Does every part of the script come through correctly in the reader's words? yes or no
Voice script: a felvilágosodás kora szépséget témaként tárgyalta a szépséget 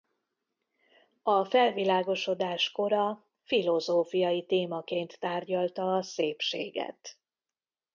no